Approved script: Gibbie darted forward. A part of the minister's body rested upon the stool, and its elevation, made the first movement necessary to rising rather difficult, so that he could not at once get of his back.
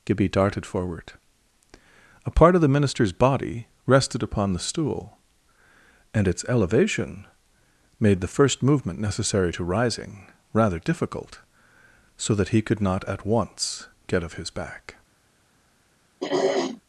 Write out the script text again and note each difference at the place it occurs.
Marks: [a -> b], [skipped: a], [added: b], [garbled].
Gibbie darted forward. A part of the minister's body rested upon the stool, and its elevation, made the first movement necessary to rising rather difficult, so that he could not at once get of his back.